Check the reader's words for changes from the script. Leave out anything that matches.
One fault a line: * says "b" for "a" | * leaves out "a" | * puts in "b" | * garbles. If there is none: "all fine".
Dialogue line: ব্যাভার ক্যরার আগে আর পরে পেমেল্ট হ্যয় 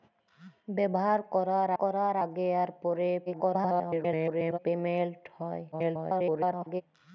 * puts in "ক্যরার"
* garbles
* garbles